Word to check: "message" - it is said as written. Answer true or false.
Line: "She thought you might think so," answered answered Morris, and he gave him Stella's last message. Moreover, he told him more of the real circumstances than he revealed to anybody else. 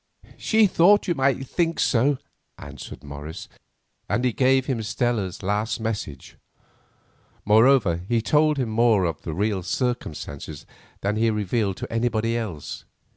true